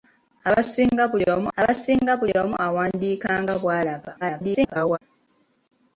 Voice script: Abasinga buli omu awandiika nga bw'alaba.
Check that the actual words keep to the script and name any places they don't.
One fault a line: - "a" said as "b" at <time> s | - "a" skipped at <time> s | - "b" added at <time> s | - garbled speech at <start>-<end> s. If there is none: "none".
- "abasinga buli omu" added at 1.6 s
- garbled speech at 4.2-5.0 s